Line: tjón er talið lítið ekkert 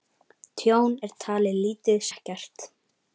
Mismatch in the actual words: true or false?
false